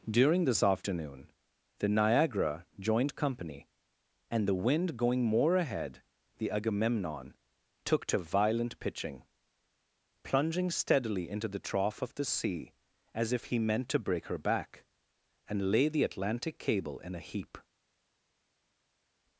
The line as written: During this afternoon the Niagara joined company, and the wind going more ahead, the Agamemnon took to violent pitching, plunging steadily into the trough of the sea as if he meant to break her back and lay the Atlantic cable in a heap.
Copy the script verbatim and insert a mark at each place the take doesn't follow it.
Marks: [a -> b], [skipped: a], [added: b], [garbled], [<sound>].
During this afternoon the Niagara joined company, and the wind going more ahead, the Agamemnon took to violent pitching, plunging steadily into the trough of the sea as if he meant to break her back and lay the Atlantic cable in a heap.